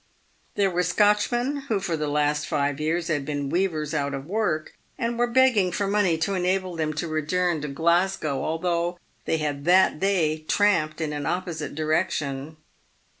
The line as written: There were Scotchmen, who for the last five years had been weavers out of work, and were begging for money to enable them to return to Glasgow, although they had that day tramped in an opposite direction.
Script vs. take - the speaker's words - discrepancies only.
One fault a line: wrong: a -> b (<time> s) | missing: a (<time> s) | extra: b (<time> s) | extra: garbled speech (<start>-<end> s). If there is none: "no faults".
no faults